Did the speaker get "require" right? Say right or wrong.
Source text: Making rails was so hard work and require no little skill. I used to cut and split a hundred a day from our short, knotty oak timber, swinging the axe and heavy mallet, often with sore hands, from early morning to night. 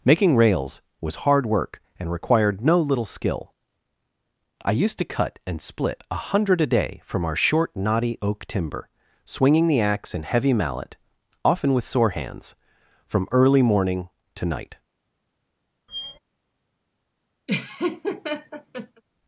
wrong